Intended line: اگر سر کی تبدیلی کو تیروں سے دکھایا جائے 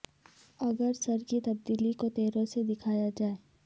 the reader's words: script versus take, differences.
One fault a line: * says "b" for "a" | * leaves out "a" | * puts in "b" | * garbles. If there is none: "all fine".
all fine